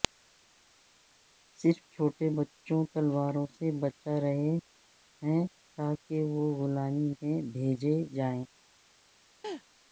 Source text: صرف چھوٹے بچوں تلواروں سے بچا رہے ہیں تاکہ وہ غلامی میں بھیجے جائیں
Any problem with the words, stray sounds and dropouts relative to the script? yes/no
yes